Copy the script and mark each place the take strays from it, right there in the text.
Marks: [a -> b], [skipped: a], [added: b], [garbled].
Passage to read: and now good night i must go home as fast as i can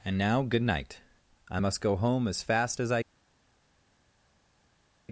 and now good night i must go home as fast as i [skipped: can]